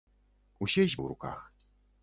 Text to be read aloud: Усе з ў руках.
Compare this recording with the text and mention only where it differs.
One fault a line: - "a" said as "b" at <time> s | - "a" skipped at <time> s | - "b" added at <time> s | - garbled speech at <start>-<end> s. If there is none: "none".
none